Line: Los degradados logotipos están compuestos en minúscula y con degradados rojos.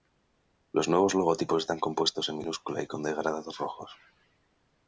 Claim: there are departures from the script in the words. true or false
true